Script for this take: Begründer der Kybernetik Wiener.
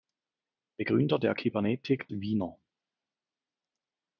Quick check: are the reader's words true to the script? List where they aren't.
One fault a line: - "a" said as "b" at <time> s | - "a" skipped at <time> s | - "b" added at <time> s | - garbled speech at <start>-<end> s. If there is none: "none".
none